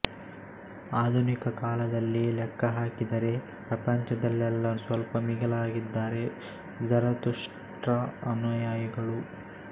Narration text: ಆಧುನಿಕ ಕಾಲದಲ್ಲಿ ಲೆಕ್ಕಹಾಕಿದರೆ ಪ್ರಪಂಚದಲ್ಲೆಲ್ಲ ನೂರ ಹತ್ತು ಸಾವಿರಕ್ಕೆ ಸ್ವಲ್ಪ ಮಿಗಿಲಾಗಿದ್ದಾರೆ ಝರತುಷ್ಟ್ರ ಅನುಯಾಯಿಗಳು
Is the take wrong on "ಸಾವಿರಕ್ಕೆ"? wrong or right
wrong